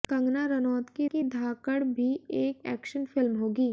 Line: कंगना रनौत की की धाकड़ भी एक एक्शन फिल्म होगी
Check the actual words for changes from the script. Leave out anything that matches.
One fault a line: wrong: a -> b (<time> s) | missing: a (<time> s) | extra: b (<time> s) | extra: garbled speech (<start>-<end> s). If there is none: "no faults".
no faults